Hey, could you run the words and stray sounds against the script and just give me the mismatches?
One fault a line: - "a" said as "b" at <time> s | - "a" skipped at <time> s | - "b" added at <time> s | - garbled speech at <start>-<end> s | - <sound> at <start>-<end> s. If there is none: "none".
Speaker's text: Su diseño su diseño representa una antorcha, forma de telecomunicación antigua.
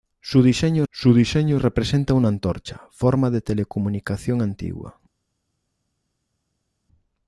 none